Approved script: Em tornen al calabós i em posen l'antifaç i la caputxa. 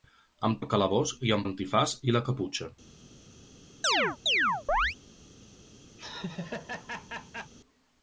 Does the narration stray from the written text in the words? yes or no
yes